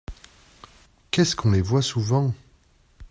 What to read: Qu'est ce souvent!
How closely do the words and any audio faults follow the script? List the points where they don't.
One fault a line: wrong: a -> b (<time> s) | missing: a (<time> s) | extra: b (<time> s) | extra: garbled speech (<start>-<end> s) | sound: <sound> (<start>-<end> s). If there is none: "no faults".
extra: qu'on les voit (1.4 s)